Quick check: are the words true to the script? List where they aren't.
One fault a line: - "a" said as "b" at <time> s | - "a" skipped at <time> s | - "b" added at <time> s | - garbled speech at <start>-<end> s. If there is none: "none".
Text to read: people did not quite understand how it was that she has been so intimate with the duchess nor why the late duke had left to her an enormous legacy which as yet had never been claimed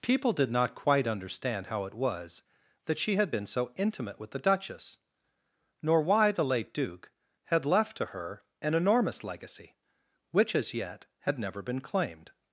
- "has" said as "had" at 3.1 s